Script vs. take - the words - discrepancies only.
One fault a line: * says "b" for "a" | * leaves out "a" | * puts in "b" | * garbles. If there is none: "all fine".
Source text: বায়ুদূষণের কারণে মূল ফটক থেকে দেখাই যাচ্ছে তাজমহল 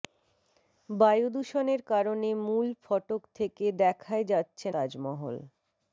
all fine